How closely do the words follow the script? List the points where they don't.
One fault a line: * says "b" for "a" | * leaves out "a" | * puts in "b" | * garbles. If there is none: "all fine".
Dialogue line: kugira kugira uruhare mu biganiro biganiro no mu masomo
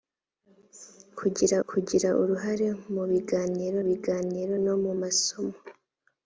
all fine